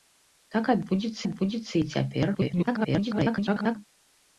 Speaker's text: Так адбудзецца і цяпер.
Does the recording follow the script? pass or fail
fail